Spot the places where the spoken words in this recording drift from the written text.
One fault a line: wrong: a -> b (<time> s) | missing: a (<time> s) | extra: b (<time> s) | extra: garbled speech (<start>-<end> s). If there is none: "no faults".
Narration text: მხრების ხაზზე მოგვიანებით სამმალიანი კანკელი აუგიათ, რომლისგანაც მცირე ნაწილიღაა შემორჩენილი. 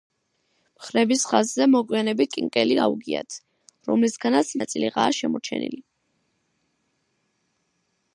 missing: სამმალიანი (2.3 s)
missing: მცირე (4.5 s)